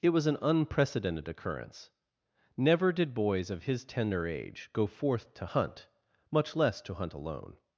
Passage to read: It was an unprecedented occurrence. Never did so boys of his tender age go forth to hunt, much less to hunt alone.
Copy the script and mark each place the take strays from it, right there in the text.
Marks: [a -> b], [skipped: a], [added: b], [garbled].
It was an unprecedented occurrence. Never did [skipped: so] boys of his tender age go forth to hunt, much less to hunt alone.